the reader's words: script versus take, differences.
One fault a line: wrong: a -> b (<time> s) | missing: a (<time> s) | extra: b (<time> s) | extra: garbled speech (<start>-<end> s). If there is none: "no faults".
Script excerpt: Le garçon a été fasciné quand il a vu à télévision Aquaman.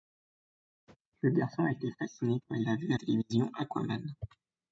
no faults